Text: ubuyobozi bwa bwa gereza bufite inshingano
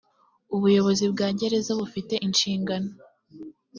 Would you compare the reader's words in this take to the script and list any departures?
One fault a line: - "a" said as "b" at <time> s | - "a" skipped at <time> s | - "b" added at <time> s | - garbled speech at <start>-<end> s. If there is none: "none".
- "bwa" skipped at 1.3 s